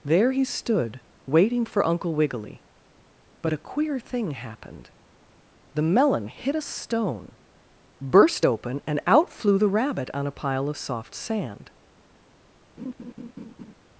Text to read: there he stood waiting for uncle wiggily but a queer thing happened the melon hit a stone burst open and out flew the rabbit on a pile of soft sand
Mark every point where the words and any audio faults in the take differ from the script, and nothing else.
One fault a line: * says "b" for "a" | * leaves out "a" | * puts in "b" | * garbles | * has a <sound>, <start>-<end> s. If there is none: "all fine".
* has a laugh, 12.8-13.7 s